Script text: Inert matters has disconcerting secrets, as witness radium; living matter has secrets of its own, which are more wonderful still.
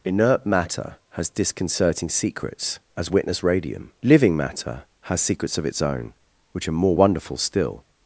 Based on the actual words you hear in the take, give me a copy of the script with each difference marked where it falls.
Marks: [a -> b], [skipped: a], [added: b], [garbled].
Inert [matters -> matter] has disconcerting secrets, as witness radium; living matter has secrets of its own, which are more wonderful still.